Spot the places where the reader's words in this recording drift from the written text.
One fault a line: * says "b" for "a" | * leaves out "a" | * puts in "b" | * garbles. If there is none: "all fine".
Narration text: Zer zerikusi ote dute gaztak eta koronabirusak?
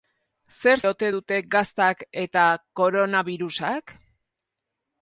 * leaves out "zerikusi"